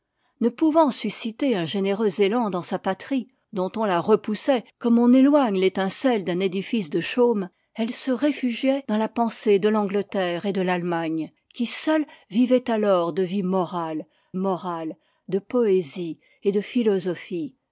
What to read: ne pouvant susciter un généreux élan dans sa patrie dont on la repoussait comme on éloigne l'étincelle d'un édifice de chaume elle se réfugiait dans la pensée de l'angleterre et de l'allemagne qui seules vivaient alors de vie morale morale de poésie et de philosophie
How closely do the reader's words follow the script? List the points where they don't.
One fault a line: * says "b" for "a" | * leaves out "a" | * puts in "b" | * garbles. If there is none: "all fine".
all fine